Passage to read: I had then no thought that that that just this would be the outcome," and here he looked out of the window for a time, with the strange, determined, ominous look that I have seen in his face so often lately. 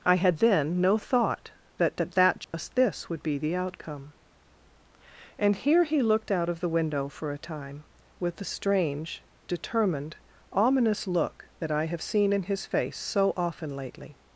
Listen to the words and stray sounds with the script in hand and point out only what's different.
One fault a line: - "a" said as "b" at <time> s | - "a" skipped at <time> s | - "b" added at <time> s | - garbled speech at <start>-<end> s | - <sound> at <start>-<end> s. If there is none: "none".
- dropout at 2.4-2.5 s